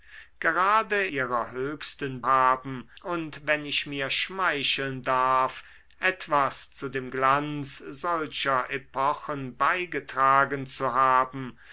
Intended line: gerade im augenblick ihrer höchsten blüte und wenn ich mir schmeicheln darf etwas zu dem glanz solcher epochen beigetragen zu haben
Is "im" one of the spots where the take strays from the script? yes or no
yes